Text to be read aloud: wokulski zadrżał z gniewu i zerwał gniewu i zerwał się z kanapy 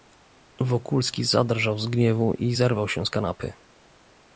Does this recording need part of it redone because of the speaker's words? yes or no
yes